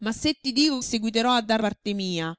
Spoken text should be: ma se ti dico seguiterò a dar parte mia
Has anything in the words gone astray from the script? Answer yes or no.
no